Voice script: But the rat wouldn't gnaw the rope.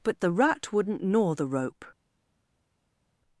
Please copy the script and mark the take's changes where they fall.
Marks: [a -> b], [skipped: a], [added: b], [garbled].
But the rat wouldn't gnaw the rope.